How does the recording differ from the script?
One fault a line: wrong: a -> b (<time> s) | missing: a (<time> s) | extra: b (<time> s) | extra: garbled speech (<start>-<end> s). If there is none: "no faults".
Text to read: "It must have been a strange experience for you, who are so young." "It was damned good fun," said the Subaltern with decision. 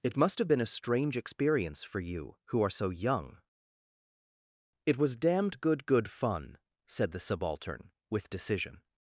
extra: good (5.9 s)